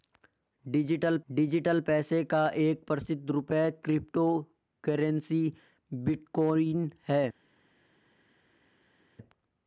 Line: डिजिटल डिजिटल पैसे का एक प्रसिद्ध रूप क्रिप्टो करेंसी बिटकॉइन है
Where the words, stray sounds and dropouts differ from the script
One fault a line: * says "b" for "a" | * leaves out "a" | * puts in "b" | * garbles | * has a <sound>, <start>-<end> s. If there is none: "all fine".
all fine